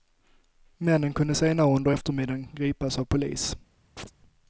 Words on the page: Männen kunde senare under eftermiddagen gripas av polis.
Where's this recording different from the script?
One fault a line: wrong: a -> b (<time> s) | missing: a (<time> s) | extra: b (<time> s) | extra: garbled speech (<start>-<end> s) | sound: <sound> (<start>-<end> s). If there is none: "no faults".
sound: chirp (4.0-4.1 s)